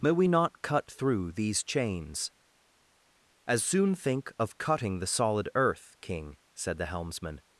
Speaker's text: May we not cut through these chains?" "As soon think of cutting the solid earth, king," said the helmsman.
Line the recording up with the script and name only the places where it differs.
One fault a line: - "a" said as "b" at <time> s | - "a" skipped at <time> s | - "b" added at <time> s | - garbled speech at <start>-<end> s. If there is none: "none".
none